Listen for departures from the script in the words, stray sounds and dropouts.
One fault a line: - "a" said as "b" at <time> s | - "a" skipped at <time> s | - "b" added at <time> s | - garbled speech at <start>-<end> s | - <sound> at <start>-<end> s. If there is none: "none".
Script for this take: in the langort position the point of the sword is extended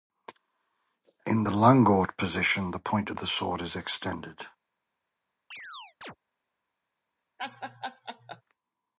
- chirp at 5.5-6.2 s
- laugh at 7.4-8.4 s